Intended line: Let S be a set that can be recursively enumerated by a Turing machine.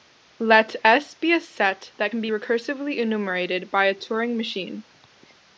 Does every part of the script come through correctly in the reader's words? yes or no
yes